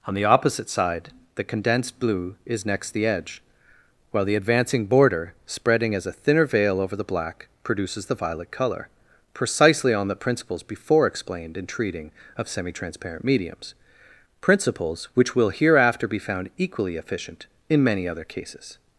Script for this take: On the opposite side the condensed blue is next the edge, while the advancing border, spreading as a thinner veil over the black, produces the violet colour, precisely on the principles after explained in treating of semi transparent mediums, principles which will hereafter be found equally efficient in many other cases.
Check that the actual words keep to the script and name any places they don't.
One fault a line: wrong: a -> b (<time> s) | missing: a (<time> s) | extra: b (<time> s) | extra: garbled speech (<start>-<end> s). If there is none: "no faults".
wrong: after -> before (10.6 s)